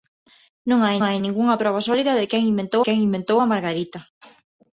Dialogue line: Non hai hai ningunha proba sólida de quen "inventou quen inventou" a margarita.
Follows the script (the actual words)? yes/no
yes